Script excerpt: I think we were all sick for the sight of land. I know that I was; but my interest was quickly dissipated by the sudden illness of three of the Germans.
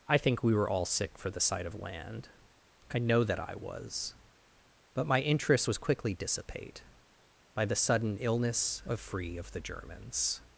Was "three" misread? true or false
true